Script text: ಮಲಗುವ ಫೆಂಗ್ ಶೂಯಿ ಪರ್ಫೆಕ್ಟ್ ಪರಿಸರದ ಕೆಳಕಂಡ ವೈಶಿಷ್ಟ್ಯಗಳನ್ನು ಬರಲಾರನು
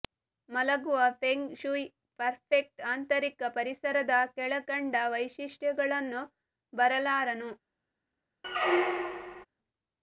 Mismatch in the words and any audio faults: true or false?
true